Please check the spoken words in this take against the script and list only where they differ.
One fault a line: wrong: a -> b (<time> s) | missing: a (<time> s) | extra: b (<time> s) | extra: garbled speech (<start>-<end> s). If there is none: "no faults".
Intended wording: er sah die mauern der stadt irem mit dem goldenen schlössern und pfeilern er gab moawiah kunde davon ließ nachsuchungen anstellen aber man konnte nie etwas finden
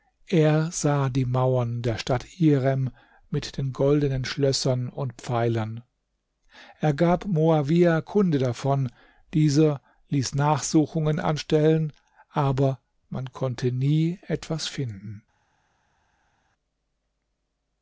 wrong: dem -> den (3.6 s)
extra: dieser (9.3 s)